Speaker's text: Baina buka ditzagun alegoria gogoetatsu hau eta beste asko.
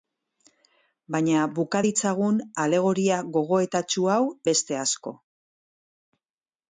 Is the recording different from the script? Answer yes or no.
yes